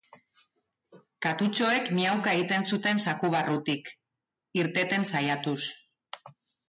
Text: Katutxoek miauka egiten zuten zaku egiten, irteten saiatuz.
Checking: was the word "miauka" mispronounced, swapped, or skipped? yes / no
no